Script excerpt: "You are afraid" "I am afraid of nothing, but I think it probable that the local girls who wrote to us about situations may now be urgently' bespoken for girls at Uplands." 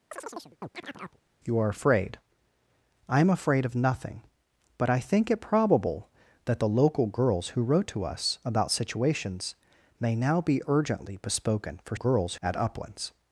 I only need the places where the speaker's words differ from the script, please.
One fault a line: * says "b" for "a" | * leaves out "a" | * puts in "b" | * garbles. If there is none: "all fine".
all fine